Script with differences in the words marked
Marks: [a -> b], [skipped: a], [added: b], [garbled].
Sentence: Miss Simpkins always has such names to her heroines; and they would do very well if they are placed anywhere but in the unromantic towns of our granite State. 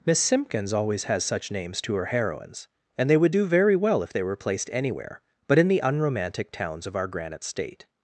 Miss Simpkins always has such names to her heroines; and they would do very well if they [are -> were] placed anywhere but in the unromantic towns of our granite State.